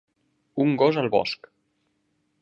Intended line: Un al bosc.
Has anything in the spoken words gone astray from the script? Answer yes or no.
yes